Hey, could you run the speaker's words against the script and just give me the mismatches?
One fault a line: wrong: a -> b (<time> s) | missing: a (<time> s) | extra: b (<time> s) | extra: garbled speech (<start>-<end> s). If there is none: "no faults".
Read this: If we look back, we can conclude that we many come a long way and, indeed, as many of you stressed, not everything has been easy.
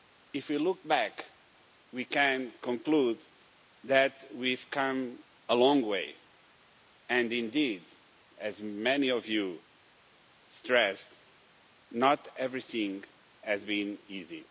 wrong: many -> have (4.5 s)